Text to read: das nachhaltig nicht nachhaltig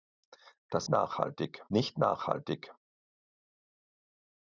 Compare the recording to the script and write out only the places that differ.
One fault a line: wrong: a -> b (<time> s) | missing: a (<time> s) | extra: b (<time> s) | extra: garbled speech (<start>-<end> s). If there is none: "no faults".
no faults